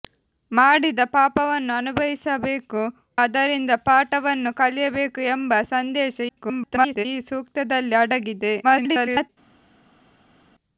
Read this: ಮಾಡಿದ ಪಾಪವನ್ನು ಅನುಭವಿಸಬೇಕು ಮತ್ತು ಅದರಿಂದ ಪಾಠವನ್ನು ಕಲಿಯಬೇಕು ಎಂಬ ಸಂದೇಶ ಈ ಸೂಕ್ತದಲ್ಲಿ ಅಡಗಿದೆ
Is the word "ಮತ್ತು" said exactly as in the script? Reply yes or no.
no